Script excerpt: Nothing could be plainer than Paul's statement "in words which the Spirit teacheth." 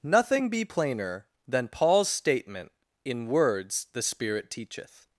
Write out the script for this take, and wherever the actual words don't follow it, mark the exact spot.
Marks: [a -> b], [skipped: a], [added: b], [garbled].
Nothing [skipped: could] be plainer than Paul's statement "in words [skipped: which] the Spirit teacheth."